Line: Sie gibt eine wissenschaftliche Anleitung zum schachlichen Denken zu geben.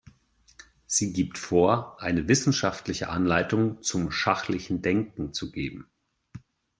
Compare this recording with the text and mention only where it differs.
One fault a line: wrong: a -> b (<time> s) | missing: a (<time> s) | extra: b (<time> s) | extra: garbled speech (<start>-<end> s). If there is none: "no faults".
extra: vor (1.4 s)